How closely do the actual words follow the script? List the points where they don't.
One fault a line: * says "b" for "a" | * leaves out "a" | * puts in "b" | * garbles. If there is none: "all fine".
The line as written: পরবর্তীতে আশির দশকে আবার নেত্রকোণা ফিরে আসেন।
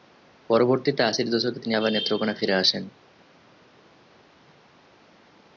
* puts in "তিনি"